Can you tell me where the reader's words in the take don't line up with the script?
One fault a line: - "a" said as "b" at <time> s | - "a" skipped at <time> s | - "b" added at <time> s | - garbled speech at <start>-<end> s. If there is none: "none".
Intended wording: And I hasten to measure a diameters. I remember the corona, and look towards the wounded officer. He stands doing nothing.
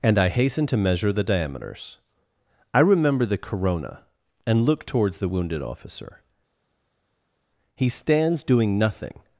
- "a" said as "the" at 1.1 s